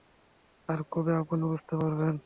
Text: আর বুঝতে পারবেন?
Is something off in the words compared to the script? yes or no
yes